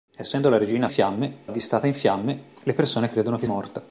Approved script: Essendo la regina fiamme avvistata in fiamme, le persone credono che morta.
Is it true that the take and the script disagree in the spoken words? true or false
false